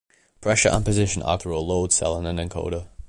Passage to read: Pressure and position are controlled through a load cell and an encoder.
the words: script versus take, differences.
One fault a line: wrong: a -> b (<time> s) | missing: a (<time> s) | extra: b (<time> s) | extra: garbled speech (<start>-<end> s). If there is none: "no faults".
missing: controlled (1.4 s)